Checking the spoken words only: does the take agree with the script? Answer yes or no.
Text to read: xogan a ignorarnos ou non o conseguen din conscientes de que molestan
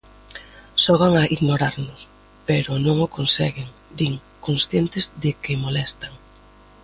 no